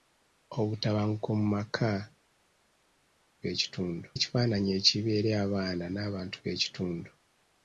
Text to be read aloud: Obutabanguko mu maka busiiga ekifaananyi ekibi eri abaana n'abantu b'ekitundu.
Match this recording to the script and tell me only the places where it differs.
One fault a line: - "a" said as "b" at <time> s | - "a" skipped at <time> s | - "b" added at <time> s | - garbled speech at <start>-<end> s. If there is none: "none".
- "busiiga" said as "b'ekitundu" at 3.4 s